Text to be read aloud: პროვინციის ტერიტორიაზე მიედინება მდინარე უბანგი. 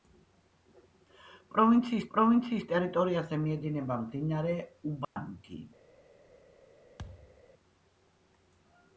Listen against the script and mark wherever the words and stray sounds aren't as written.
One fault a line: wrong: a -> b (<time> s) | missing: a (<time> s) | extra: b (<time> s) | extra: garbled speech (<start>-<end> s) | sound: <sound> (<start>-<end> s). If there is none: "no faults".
extra: პროვინციის (2.2 s)
sound: dropout (5.0-5.2 s)
sound: thud (7.0-7.4 s)